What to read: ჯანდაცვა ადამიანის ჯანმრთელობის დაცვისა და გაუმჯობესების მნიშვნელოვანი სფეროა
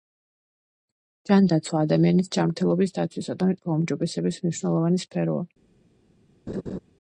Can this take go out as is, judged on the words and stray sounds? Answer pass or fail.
fail